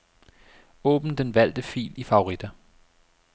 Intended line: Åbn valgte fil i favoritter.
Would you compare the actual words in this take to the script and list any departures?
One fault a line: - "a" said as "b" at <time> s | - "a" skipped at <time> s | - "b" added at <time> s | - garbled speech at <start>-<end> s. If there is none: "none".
- "den" added at 1.1 s